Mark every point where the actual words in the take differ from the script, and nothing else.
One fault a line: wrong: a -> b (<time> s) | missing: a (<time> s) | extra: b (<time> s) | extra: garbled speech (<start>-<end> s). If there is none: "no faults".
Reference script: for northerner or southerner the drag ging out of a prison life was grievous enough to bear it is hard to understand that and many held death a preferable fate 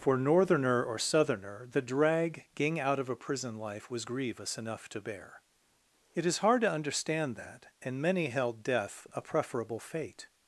no faults